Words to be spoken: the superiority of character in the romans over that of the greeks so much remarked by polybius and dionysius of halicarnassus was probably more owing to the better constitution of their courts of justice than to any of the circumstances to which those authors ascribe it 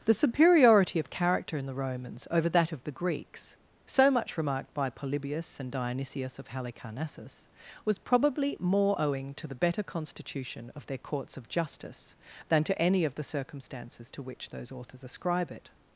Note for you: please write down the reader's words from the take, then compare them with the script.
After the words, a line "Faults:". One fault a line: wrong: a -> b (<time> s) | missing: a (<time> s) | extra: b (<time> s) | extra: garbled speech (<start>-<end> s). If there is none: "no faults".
the superiority of character in the romans over that of the greeks so much remarked by polybius and dionysius of halicarnassus was probably more owing to the better constitution of their courts of justice than to any of the circumstances to which those authors ascribe it
Faults:
no faults